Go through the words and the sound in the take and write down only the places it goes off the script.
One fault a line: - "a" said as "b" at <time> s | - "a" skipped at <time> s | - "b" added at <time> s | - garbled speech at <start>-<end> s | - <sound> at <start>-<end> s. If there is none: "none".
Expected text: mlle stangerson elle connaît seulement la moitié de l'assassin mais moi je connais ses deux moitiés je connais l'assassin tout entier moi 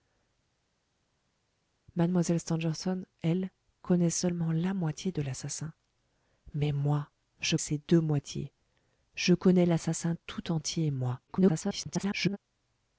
- "connais" skipped at 7.6 s
- garbled speech at 11.3-12.4 s